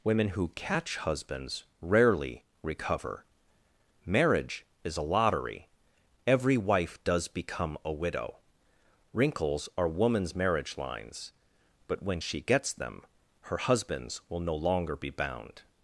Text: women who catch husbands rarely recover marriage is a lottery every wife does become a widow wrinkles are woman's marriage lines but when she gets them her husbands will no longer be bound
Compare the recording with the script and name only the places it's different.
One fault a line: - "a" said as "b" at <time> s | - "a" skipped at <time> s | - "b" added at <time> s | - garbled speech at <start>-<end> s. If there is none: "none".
none